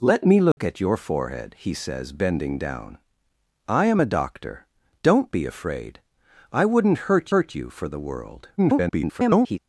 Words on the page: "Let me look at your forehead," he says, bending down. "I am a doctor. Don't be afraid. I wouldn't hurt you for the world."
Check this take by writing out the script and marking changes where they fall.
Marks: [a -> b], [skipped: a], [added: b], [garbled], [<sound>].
"Let me look [dropout] at your forehead," he says, bending down. "I am a doctor. Don't be afraid. I wouldn't hurt [added: hurt] you for the world." [garbled]